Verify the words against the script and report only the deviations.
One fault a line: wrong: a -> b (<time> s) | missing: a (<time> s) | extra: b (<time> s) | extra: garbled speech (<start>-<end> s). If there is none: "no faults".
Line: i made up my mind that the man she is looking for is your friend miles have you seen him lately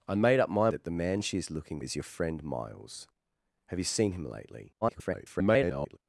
missing: mind (0.7 s)
missing: for (1.8 s)
extra: garbled speech (4.8-6.0 s)